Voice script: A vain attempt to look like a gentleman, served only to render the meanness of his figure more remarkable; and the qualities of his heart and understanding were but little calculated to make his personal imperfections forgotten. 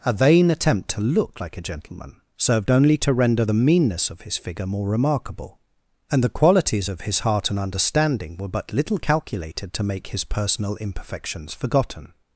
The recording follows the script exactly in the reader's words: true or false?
true